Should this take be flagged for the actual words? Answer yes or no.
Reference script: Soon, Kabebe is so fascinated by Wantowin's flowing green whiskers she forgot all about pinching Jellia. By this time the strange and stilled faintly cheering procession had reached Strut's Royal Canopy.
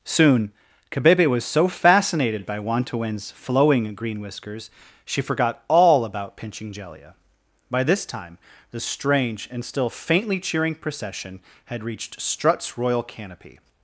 yes